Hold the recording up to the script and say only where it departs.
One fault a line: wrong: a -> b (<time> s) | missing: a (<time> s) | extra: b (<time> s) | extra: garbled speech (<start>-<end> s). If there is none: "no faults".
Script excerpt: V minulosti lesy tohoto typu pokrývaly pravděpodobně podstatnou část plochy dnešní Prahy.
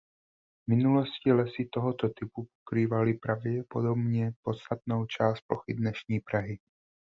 no faults